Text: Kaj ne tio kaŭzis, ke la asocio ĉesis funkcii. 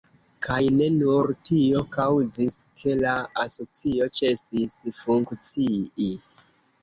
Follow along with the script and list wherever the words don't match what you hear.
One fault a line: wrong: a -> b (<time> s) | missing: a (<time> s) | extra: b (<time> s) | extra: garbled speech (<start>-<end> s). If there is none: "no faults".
extra: nur (0.9 s)